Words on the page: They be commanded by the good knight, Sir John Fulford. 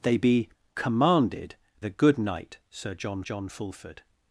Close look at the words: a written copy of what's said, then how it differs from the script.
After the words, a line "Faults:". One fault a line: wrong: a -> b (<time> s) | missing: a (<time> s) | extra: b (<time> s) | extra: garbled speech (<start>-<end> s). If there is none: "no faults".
They be commanded the good knight, Sir John John Fulford.
Faults:
missing: by (1.6 s)
extra: John (3.2 s)